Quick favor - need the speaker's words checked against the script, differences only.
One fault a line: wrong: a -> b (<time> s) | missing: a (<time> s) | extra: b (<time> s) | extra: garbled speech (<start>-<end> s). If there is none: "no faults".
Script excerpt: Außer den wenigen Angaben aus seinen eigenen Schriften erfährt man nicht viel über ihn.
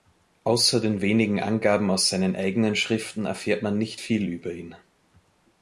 no faults